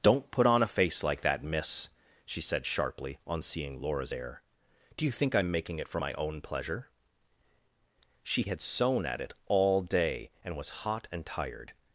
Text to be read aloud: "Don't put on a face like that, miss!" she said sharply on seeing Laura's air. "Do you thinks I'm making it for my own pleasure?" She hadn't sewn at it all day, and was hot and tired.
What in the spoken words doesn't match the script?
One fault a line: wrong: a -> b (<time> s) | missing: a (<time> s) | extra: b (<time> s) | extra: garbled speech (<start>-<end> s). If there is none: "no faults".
wrong: thinks -> think (5.1 s)
wrong: hadn't -> had (8.4 s)